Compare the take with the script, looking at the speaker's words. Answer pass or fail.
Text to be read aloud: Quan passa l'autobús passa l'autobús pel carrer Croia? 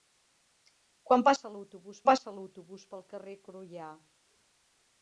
pass